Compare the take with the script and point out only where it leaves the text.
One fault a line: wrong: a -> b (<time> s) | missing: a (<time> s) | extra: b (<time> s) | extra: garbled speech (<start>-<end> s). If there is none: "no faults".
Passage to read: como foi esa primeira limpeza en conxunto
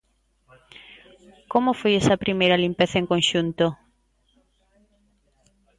no faults